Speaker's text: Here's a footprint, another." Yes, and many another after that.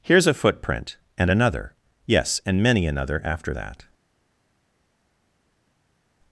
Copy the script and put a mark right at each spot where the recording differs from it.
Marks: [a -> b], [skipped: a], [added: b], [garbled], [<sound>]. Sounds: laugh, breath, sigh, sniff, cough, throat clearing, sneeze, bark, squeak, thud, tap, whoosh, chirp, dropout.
Here's a footprint, [added: and] another." Yes, and many another after that.